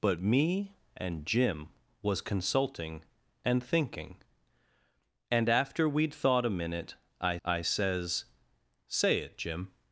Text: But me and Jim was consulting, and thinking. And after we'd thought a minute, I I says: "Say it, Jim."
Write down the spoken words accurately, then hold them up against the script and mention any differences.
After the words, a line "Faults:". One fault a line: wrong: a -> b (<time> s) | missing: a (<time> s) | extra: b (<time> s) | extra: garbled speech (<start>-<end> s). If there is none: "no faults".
But me and Jim was consulting, and thinking. And after we'd thought a minute, I I says: "Say it, Jim."
Faults:
no faults